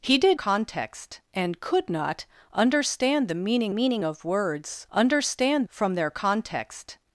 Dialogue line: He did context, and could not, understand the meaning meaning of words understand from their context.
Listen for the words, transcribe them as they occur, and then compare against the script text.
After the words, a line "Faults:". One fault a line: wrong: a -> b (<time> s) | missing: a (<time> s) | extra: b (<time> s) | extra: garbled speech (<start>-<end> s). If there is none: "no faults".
He did context, and could not, understand the meaning meaning of words understand from their context.
Faults:
no faults